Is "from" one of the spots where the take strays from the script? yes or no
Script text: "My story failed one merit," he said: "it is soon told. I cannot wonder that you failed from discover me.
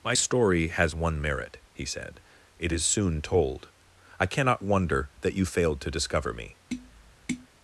yes